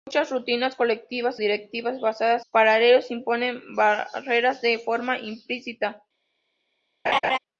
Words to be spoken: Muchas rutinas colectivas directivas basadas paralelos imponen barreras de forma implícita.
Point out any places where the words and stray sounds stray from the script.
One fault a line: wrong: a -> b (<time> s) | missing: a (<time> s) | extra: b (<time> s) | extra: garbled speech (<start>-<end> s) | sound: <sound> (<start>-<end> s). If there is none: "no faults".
sound: laugh (7.1-7.4 s)